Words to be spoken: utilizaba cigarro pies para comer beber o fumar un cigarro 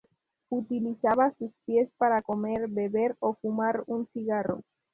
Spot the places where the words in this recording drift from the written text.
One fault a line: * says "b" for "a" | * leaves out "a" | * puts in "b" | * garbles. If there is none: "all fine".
* says "sus" for "cigarro"